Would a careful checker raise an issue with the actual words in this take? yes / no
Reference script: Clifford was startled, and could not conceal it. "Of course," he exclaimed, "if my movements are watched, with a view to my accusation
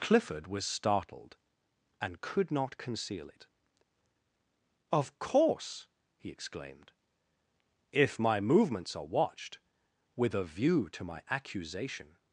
no